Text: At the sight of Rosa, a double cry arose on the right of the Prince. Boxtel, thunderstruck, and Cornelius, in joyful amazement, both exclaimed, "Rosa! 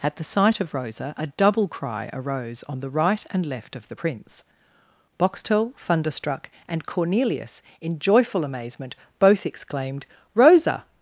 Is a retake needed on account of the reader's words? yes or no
yes